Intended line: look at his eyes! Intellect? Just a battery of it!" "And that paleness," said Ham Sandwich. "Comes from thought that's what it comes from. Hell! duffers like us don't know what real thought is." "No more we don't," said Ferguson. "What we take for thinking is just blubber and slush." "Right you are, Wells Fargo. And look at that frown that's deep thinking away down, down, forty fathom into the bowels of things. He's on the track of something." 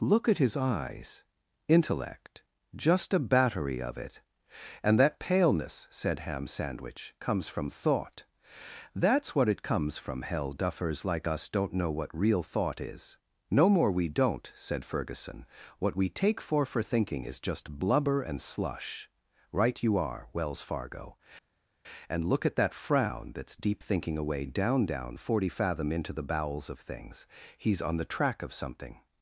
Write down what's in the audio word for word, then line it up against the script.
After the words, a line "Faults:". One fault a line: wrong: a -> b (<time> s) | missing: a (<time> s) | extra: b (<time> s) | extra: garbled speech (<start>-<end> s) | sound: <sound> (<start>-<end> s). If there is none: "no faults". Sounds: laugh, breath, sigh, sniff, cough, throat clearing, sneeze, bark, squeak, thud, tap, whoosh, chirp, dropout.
look at his eyes! Intellect? Just a battery of it!" "And that paleness," said Ham Sandwich. "Comes from thought that's what it comes from. Hell! duffers like us don't know what real thought is." "No more we don't," said Ferguson. "What we take for for thinking is just blubber and slush." "Right you are, Wells Fargo. And look at that frown that's deep thinking away down, down, forty fathom into the bowels of things. He's on the track of something."
Faults:
extra: for (16.6 s)